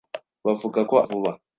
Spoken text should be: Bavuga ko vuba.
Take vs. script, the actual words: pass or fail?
pass